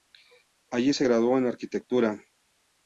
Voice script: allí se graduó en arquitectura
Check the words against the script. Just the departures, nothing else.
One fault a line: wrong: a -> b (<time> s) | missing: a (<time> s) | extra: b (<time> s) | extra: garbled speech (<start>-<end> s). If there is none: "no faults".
no faults